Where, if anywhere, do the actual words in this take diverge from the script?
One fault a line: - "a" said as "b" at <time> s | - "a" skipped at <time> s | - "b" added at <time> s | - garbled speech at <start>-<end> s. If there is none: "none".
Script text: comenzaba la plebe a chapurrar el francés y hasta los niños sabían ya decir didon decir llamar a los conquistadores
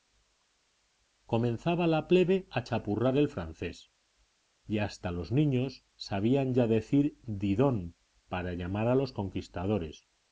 - "decir" said as "para" at 8.3 s